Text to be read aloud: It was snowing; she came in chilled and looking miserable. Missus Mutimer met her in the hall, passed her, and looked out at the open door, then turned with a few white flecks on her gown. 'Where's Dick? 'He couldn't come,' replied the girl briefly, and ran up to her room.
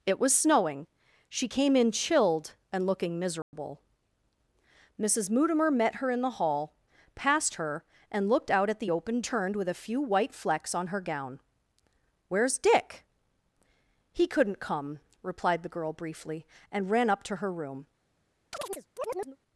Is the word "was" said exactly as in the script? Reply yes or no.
yes